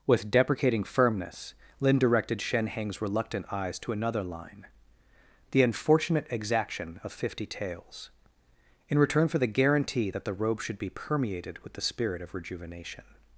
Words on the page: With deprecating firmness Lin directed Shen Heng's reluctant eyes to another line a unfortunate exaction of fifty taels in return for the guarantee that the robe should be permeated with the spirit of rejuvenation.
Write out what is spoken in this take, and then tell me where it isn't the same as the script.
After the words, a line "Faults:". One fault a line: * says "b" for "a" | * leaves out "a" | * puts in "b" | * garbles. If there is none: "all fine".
With deprecating firmness Lin directed Shen Heng's reluctant eyes to another line the unfortunate exaction of fifty taels in return for the guarantee that the robe should be permeated with the spirit of rejuvenation.
Faults:
* says "the" for "a"